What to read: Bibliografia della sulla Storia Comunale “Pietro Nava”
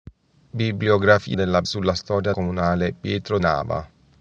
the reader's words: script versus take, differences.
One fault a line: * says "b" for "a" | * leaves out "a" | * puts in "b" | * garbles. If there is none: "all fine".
all fine